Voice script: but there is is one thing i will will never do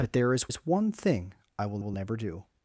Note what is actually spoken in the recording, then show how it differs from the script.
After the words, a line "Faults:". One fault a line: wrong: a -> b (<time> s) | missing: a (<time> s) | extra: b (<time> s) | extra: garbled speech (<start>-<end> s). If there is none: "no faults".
but there is is one thing i will will never do
Faults:
no faults